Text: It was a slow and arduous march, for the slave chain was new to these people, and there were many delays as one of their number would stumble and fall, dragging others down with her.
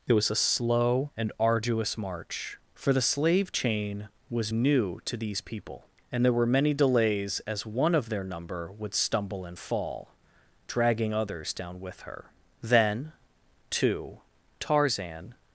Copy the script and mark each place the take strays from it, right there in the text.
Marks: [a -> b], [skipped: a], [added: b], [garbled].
It was a slow and arduous march, for the slave chain was new to these people, and there were many delays as one of their number would stumble and fall, dragging others down with her. [added: Then too Tarzan]